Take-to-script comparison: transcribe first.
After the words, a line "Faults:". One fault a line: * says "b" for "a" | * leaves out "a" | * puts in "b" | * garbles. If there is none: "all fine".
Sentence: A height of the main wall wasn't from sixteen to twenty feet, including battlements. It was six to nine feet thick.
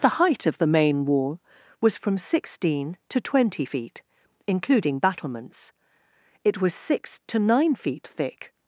The height of the main wall was from sixteen to twenty feet, including battlements. It was six to nine feet thick.
Faults:
* says "The" for "A"
* says "was" for "wasn't"